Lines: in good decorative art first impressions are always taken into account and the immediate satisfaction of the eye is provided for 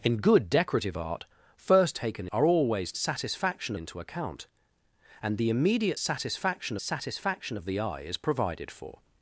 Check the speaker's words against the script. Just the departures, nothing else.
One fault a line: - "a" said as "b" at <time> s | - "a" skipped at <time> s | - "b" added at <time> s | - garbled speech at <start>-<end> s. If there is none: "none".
- "impressions" said as "taken" at 1.9 s
- "taken" said as "satisfaction" at 3.0 s
- "satisfaction" added at 6.8 s